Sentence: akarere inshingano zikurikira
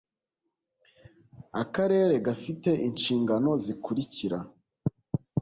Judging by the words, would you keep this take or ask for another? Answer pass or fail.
fail